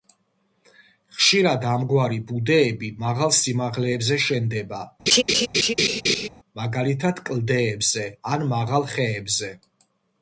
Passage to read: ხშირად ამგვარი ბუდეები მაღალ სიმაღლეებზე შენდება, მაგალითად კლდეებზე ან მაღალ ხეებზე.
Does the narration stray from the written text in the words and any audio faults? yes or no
yes